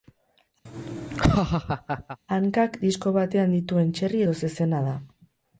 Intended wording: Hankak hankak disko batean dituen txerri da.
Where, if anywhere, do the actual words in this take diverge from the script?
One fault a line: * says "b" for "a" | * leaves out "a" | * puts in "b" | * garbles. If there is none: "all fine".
* leaves out "hankak"
* puts in "edo zezena"